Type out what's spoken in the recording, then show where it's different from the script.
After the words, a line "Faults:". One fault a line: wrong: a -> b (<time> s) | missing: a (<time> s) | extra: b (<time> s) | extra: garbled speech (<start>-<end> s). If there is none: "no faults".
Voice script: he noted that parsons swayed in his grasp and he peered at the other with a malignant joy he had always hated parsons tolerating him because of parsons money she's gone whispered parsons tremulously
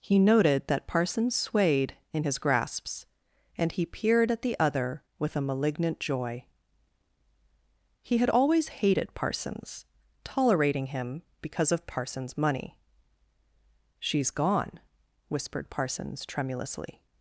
he noted that parsons swayed in his grasps and he peered at the other with a malignant joy he had always hated parsons tolerating him because of parsons money she's gone whispered parsons tremulously
Faults:
wrong: grasp -> grasps (2.4 s)